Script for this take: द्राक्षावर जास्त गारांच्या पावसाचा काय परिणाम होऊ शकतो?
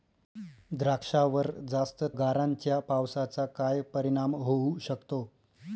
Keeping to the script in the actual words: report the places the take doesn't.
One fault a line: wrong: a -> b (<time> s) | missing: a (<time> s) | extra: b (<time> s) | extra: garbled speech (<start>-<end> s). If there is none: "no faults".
no faults